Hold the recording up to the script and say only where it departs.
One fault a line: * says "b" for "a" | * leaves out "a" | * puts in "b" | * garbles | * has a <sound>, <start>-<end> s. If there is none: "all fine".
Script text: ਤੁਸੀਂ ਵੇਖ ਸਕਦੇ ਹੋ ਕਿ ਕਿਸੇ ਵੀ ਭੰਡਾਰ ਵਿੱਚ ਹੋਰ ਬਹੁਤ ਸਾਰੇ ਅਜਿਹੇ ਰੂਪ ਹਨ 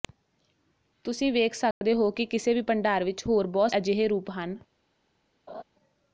* has a dropout, 1.7-1.8 s
* leaves out "ਸਾਰੇ"
* has a laugh, 5.5-5.6 s